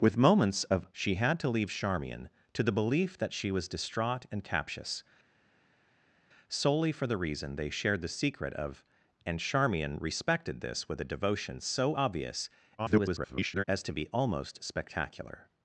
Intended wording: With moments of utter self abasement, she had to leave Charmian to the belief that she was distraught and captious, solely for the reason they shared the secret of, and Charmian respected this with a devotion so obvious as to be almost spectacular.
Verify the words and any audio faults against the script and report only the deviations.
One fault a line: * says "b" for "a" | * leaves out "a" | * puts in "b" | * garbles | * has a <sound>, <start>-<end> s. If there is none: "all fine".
* leaves out "utter self abasement"
* garbles